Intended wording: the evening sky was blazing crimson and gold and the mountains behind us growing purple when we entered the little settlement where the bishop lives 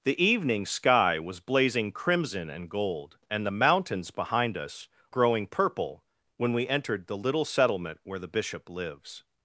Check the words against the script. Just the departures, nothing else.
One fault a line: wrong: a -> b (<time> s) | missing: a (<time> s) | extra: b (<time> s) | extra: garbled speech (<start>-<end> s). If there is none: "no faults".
no faults